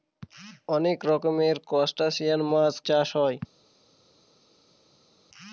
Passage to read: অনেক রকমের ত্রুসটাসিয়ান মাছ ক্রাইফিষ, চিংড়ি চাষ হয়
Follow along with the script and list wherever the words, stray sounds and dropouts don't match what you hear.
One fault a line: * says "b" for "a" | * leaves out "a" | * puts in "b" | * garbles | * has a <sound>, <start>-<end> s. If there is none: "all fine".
* leaves out "ক্রাইফিষ চিংড়ি"